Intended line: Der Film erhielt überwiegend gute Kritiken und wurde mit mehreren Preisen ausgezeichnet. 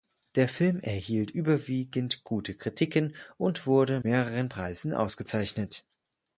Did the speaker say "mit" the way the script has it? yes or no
no